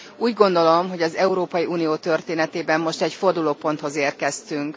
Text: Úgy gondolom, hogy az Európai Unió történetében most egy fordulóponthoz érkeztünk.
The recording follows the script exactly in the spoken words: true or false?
true